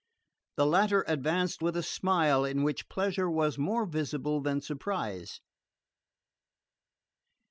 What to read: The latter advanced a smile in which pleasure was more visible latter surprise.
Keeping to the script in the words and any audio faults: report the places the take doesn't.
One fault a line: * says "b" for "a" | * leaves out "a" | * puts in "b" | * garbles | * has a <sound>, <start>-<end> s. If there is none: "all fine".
* puts in "with"
* says "than" for "latter"